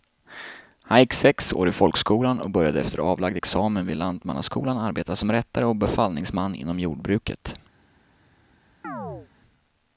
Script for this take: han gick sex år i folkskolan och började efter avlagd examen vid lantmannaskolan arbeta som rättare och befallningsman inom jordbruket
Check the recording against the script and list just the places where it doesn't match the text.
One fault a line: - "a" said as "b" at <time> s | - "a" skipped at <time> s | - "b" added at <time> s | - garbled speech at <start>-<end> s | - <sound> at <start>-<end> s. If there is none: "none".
- chirp at 8.8-9.3 s